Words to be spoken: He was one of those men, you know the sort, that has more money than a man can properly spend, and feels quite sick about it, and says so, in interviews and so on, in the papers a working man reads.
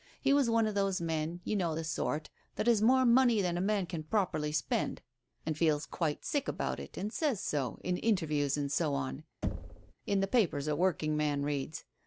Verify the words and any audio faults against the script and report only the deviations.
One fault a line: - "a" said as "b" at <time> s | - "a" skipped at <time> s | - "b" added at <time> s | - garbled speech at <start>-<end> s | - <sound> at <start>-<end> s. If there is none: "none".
- thud at 9.4-9.9 s